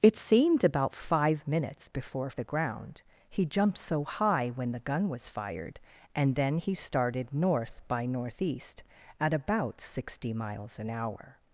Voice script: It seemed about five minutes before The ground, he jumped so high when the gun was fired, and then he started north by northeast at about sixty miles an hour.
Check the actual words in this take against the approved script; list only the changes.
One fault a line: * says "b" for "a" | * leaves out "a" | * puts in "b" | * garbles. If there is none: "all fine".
all fine